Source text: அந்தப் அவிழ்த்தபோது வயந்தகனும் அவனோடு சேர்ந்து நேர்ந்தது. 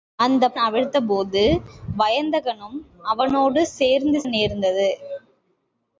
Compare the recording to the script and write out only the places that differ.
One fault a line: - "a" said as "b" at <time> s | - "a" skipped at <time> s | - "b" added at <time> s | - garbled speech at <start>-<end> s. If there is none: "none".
none